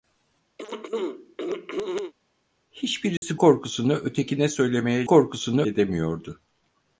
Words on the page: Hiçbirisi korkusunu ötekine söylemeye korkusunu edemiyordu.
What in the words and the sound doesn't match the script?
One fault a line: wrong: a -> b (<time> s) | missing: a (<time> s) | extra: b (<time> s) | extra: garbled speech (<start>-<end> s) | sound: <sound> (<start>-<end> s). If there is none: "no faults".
sound: throat clearing (0.6-2.1 s)
sound: dropout (3.2-3.2 s)